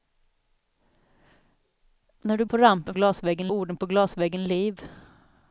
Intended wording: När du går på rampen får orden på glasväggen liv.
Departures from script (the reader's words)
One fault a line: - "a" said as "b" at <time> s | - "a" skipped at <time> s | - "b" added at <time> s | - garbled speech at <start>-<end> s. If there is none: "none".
- "går" skipped at 2.5 s
- "får" said as "glasväggen" at 2.9 s